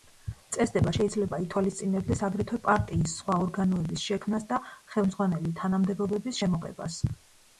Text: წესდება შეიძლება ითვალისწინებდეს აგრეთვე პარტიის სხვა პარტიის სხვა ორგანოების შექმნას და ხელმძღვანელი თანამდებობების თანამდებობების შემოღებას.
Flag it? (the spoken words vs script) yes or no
yes